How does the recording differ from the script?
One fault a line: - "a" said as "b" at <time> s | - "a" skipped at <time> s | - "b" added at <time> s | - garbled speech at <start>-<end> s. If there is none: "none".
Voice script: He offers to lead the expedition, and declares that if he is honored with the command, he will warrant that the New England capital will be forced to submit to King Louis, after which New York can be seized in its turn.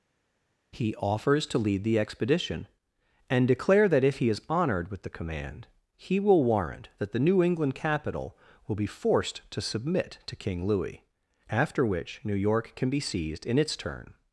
- "declares" said as "declare" at 3.5 s